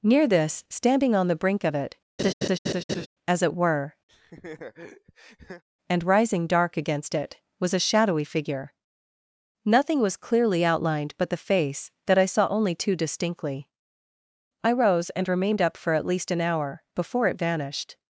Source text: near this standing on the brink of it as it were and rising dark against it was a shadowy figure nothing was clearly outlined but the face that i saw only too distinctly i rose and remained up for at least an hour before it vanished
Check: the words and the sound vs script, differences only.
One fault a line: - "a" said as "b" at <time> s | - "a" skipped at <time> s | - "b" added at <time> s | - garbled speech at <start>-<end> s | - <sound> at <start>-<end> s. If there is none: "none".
- laugh at 2.2-3.1 s
- laugh at 4.1-5.6 s